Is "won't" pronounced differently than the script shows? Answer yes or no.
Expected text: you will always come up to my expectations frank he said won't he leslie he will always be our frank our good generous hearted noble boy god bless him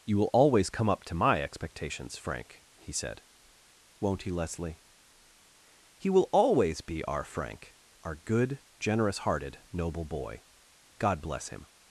no